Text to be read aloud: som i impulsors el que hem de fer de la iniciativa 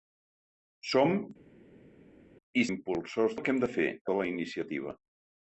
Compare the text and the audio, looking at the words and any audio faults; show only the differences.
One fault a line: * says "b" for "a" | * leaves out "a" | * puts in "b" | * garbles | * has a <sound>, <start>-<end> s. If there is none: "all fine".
all fine